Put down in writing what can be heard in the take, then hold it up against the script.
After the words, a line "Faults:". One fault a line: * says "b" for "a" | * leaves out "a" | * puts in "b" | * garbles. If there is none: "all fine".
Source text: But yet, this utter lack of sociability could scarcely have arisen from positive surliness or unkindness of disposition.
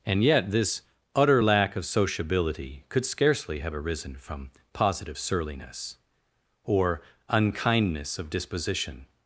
And yet, this utter lack of sociability could scarcely have arisen from positive surliness or unkindness of disposition.
Faults:
* says "And" for "But"